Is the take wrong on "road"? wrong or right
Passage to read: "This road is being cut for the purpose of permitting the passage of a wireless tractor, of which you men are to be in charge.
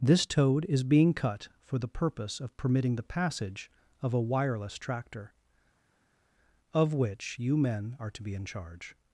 wrong